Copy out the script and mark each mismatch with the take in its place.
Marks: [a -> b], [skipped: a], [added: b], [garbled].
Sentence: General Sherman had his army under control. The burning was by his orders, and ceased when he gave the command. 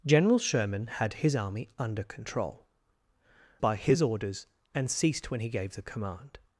General Sherman had his army under control. [skipped: The burning was] by his orders, and ceased when he gave the command.